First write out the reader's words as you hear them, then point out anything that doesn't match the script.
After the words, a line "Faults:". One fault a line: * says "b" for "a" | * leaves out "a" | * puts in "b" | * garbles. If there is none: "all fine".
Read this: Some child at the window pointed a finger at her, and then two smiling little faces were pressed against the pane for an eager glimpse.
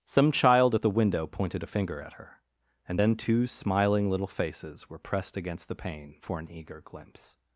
Some child at the window pointed a finger at her, and then two smiling little faces were pressed against the pane for an eager glimpse.
Faults:
all fine